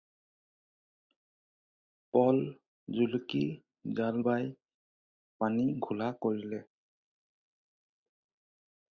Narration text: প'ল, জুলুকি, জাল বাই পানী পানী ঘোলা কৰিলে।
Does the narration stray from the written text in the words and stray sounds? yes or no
yes